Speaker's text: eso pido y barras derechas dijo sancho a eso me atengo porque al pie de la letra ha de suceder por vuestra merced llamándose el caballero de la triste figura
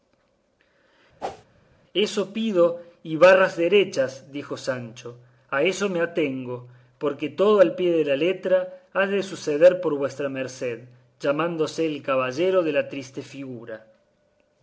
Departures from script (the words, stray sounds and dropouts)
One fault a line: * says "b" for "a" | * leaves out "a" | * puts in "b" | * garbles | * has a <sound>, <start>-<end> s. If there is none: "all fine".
* has a whoosh, 1.2-1.5 s
* puts in "todo"